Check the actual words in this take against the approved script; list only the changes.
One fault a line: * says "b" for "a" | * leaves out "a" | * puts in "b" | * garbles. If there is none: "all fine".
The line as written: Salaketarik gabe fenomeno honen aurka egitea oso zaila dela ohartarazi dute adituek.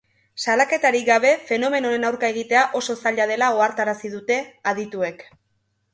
all fine